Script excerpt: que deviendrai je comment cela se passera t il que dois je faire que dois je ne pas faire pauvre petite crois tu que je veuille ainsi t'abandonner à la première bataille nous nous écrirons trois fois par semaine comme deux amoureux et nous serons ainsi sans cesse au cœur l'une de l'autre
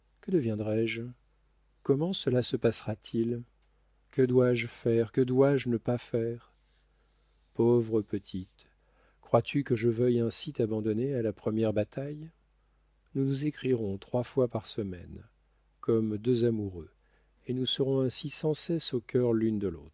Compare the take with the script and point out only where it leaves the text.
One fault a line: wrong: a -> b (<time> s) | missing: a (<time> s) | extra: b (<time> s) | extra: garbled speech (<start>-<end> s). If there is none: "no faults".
no faults